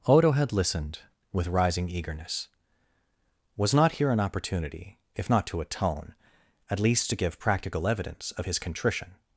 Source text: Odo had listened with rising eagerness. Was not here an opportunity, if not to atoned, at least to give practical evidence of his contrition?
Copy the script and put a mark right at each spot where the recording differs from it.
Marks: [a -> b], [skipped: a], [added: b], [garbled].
Odo had listened with rising eagerness. Was not here an opportunity, if not to [atoned, -> atone] at least to give practical evidence of his contrition?